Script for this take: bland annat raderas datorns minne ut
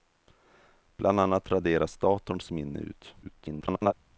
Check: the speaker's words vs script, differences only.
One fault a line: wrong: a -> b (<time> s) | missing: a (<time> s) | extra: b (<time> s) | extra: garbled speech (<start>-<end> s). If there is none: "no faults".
extra: garbled speech (3.2-3.9 s)